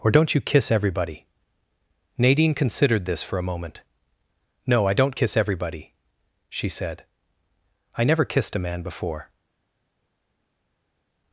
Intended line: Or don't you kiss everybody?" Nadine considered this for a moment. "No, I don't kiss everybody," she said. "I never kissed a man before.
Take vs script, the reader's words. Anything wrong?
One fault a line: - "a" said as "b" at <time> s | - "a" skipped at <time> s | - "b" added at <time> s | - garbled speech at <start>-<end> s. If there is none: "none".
none